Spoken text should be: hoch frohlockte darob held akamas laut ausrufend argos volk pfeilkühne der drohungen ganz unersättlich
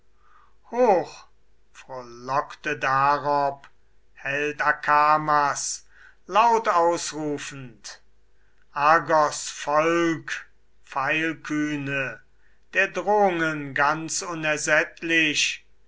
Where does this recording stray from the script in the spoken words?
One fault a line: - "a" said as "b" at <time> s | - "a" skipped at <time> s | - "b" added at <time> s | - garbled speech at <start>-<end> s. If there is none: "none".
none